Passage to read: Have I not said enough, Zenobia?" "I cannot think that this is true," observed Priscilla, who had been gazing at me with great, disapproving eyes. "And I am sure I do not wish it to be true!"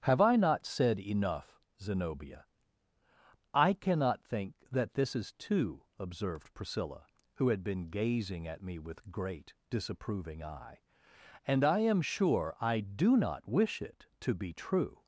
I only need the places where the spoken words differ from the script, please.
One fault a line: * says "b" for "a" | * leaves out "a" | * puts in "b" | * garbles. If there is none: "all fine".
* says "two" for "true"
* says "eye" for "eyes"